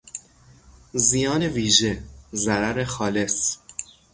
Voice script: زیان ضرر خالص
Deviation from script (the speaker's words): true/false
true